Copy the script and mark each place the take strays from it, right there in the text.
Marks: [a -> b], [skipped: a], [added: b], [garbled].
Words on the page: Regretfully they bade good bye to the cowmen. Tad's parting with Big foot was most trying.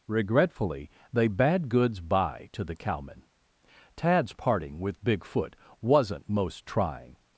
Regretfully they bade [good -> goods] bye to the cowmen. Tad's parting with Big foot [was -> wasn't] most trying.